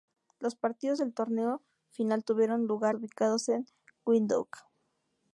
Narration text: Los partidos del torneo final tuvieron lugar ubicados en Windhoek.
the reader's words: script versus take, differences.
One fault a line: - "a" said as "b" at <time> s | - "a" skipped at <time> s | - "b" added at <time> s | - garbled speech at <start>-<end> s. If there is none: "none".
none